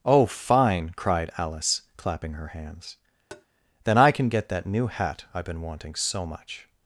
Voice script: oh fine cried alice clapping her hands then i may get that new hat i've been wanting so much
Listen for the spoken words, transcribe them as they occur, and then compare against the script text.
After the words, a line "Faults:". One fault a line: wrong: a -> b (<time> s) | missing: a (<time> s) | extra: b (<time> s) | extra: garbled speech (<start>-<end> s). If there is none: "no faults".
oh fine cried alice clapping her hands then i can get that new hat i've been wanting so much
Faults:
wrong: may -> can (4.1 s)